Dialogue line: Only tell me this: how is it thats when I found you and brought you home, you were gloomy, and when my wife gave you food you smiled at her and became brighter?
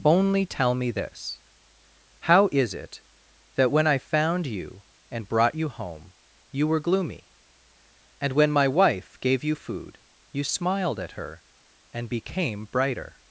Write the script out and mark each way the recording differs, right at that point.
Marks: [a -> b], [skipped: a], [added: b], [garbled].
Only tell me this: how is it [thats -> that] when I found you and brought you home, you were gloomy, and when my wife gave you food you smiled at her and became brighter?